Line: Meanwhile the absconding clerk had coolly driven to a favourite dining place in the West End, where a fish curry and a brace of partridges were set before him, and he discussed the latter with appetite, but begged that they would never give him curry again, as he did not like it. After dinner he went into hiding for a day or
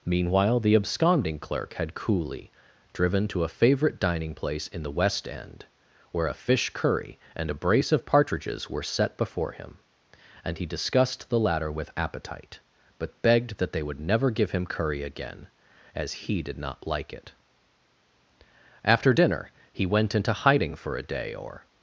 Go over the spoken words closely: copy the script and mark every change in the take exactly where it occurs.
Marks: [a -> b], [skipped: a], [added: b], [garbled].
Meanwhile the absconding clerk had coolly driven to a favourite dining place in the West End, where a fish curry and a brace of partridges were set before him, and he discussed the latter with appetite, but begged that they would never give him curry again, as he did not like it. After dinner he went into hiding for a day or